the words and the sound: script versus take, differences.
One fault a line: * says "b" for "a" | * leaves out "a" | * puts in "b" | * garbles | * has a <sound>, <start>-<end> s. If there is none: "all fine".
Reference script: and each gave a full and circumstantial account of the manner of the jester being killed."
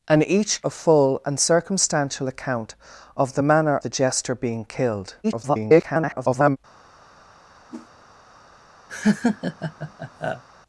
* leaves out "gave"
* leaves out "of"
* garbles
* has a whoosh, 7.7-7.9 s
* has a laugh, 8.9-10.4 s